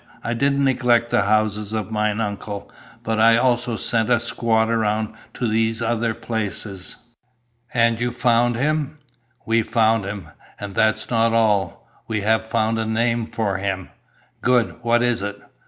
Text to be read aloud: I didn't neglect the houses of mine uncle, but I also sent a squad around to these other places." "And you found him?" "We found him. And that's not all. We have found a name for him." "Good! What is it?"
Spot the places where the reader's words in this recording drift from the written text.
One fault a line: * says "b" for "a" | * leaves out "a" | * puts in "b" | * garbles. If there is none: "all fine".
all fine